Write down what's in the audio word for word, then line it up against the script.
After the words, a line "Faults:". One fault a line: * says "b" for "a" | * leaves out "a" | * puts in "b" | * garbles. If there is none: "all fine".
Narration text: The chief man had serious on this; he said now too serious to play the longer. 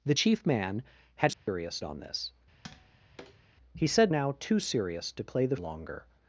The chief man had serious on this; he said now too serious to play the longer.
Faults:
all fine